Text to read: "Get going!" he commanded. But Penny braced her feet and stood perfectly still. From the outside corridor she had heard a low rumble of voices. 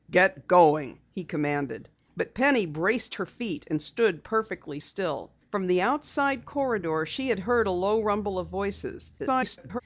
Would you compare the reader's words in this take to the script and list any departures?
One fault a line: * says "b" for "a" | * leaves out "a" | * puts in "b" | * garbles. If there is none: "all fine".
* garbles